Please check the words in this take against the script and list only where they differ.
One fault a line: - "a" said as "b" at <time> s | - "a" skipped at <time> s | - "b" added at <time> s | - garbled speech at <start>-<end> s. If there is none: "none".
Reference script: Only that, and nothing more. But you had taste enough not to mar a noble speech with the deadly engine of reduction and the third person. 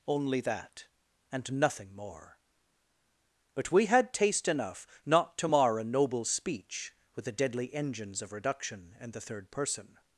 - "you" said as "we" at 3.7 s
- "engine" said as "engines" at 7.7 s